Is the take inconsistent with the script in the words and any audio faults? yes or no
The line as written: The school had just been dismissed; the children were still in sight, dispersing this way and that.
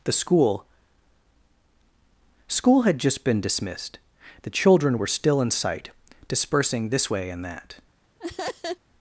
yes